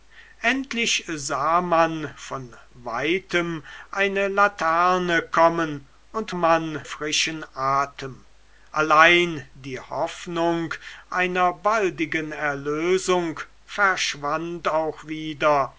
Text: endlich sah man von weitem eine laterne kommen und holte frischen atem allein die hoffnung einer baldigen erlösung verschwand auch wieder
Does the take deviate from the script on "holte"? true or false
true